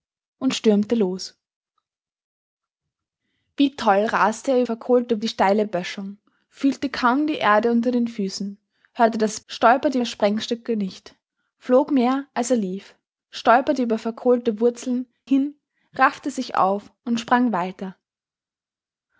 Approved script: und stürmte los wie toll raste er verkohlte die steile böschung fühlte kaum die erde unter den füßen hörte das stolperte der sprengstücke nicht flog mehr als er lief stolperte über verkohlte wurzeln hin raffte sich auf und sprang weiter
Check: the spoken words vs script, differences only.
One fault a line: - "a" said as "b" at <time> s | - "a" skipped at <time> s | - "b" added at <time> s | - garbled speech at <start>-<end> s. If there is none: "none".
none